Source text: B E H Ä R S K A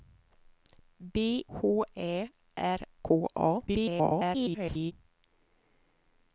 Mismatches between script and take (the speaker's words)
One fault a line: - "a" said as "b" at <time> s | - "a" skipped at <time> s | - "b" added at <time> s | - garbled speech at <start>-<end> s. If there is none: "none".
- "E" skipped at 1.4 s
- "S" skipped at 2.8 s
- garbled speech at 3.7-4.9 s